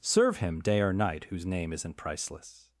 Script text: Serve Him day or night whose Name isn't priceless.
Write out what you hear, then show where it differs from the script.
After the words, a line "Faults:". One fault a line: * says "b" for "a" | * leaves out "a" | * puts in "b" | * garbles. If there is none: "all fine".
Serve Him day or night whose Name isn't priceless.
Faults:
all fine